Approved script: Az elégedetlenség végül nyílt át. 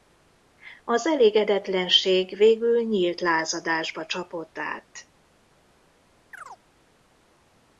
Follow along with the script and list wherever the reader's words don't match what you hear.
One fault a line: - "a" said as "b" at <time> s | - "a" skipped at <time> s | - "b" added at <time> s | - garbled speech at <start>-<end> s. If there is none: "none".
- "lázadásba csapott" added at 3.2 s